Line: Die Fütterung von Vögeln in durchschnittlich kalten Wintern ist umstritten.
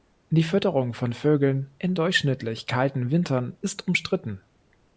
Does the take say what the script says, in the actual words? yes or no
yes